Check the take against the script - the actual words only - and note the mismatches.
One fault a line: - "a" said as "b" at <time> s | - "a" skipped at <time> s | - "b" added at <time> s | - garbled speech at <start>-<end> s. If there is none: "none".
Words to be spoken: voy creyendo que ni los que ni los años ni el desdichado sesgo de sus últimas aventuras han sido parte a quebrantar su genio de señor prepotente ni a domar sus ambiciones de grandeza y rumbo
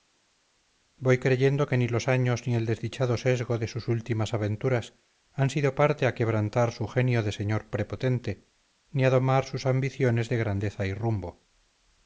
- "que ni los" skipped at 2.1 s